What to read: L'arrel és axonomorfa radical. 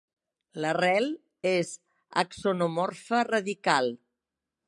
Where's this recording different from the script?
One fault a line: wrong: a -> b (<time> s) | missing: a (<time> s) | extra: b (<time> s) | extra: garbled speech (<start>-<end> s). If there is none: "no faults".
no faults